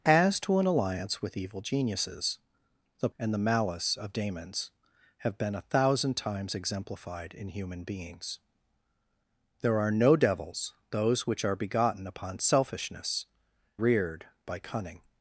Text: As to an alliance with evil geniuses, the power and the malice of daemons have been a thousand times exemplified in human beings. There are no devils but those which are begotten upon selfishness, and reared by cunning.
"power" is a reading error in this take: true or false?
true